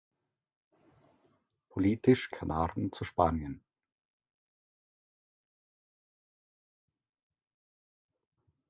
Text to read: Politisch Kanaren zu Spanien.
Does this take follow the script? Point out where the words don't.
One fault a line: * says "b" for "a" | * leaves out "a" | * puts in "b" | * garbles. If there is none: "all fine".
all fine